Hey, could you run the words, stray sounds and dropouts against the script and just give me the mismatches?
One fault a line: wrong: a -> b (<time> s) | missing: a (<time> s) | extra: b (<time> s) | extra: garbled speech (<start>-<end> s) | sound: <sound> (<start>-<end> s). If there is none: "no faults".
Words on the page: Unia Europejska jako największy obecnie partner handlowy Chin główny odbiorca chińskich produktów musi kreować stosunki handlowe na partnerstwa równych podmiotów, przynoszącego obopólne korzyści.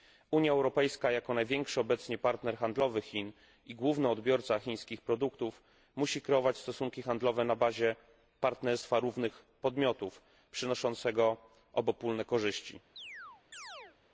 extra: i (3.6 s)
extra: bazie (7.5 s)
sound: chirp (13.0-14.0 s)